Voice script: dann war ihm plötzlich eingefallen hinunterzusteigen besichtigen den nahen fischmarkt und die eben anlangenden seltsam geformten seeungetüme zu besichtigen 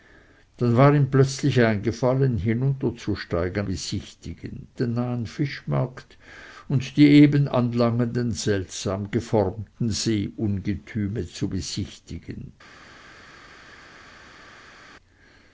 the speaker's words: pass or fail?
pass